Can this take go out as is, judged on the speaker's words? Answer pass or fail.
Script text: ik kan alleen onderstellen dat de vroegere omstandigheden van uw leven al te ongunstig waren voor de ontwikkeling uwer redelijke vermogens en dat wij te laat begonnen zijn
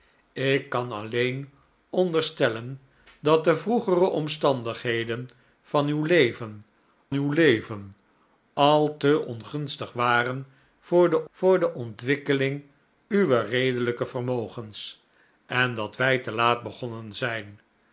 fail